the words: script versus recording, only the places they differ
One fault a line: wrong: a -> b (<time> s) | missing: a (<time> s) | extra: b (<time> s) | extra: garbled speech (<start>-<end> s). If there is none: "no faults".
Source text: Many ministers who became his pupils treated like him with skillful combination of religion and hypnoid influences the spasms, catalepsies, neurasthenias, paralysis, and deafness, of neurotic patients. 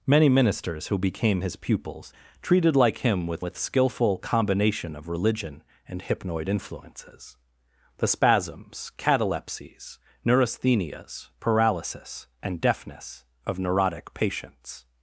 extra: with (3.4 s)